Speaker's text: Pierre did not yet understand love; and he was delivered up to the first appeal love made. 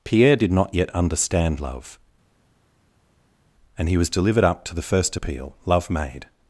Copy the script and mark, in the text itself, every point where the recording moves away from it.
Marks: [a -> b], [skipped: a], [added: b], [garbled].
Pierre did not yet understand love; and he was delivered up to the first appeal love made.